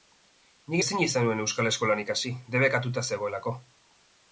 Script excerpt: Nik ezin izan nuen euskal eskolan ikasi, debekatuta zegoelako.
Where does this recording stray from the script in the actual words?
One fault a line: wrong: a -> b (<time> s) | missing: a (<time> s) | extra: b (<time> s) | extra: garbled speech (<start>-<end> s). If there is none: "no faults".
no faults